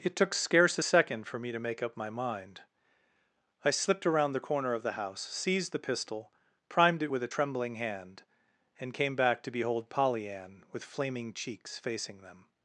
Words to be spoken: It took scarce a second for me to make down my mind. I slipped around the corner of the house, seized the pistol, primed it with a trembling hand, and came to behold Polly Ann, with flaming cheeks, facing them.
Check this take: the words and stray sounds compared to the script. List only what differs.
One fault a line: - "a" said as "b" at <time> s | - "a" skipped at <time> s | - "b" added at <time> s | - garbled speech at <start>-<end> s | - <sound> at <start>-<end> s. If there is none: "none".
- "down" said as "up" at 1.8 s
- "back" added at 9.2 s